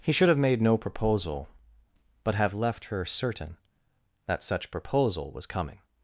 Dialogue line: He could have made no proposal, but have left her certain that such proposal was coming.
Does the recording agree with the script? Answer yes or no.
no